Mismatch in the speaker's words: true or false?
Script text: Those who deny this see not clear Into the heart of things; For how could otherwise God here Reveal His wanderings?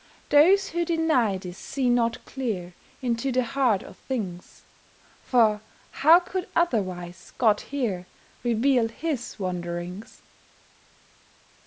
false